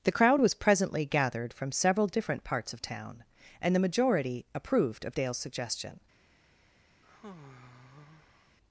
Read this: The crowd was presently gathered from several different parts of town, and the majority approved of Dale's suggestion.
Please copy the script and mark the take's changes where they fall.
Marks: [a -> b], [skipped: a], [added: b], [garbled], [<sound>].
The crowd was presently gathered from several different parts of town, and the majority approved of Dale's suggestion. [sigh]